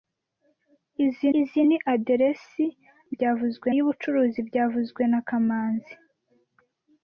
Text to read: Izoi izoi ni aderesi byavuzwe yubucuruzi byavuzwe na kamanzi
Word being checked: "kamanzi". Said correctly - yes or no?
yes